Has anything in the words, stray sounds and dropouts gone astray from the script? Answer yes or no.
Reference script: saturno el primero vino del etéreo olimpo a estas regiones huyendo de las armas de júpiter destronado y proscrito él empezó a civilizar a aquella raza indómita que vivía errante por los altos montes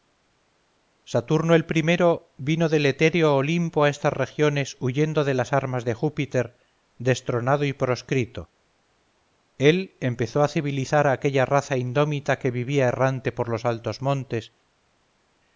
no